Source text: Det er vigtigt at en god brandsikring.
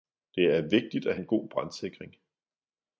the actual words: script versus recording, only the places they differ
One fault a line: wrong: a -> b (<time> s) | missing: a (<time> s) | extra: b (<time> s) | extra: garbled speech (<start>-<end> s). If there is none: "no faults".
no faults